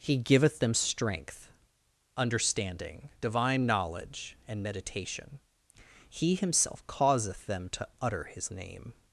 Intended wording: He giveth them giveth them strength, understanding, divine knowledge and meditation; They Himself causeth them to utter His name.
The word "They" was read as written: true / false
false